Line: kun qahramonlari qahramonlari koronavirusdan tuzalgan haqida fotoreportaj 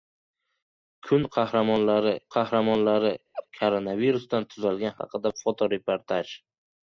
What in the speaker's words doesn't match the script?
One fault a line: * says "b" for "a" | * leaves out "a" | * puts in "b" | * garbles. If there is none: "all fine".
all fine